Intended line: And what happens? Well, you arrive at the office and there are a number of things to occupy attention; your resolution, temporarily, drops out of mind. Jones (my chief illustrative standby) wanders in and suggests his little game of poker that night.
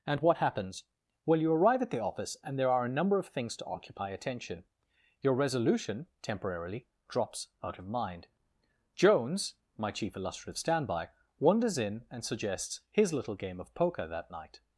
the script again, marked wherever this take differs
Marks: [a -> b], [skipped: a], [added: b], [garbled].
And what happens? Well, you arrive at the office and there are a number of things to occupy attention; your resolution, temporarily, drops out of mind. Jones (my chief illustrative standby) wanders in and suggests his little game of poker that night.